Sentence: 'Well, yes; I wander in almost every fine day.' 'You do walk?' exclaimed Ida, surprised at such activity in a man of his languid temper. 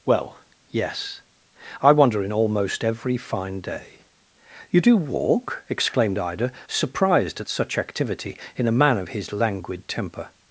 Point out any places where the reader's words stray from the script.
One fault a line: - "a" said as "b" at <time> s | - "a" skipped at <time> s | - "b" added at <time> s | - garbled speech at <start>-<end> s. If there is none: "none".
none